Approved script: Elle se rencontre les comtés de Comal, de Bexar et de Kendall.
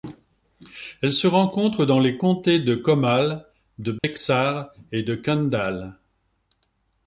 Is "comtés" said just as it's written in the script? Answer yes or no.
yes